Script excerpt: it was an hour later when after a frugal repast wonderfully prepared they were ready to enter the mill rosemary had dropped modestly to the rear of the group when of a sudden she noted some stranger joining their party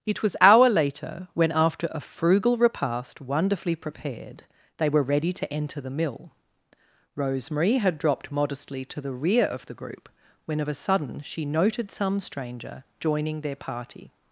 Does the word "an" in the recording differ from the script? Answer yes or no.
yes